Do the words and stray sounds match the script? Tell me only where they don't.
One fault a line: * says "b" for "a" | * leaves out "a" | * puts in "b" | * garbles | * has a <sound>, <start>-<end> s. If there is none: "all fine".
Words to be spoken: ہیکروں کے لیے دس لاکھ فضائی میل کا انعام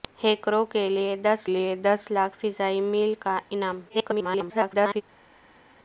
* puts in "لیے دس"
* garbles